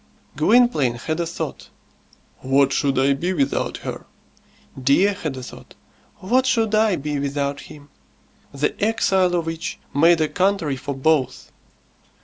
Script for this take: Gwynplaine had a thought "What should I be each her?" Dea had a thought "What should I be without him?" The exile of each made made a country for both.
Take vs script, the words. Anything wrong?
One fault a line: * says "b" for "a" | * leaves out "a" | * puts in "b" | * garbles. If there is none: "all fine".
* says "without" for "each"
* leaves out "made"